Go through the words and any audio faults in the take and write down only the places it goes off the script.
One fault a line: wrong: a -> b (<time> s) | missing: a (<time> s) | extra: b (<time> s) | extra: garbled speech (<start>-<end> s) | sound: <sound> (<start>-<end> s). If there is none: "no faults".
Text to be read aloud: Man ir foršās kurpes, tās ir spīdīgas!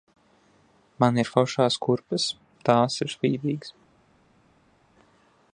no faults